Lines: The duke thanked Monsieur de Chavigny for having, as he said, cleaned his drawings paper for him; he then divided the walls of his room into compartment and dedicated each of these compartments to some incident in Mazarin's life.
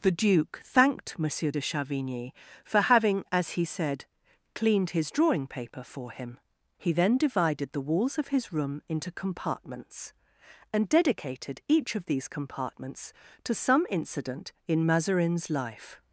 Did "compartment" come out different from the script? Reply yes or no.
yes